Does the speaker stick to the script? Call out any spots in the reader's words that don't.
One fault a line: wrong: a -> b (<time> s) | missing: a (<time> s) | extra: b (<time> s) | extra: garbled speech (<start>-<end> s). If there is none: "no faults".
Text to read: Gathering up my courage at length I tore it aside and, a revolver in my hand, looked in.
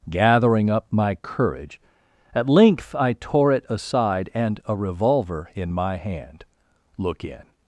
wrong: looked -> look (7.0 s)